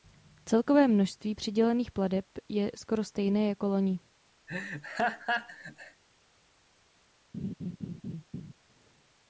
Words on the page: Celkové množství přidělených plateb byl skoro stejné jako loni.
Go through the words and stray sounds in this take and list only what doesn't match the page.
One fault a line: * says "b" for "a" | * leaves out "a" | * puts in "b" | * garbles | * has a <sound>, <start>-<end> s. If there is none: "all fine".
* says "je" for "byl"
* has a laugh, 4.5-6.0 s
* has a laugh, 7.3-8.5 s